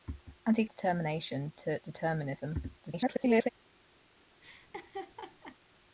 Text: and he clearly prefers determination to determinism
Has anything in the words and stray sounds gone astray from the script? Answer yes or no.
yes